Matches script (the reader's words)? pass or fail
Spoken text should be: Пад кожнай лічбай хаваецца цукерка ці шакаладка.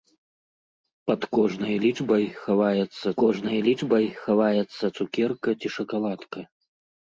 fail